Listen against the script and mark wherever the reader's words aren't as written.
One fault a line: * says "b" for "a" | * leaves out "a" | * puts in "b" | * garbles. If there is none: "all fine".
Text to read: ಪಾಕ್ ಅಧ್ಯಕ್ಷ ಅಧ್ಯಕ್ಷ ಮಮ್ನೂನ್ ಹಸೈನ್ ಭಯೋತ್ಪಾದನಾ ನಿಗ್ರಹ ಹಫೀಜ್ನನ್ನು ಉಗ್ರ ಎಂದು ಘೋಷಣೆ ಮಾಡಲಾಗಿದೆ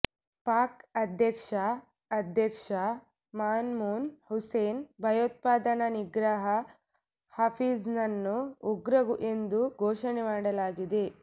all fine